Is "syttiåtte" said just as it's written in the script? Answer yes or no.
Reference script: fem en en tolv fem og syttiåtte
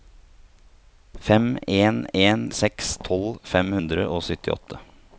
yes